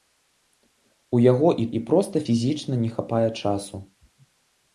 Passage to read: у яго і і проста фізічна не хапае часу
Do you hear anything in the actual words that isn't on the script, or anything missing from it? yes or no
no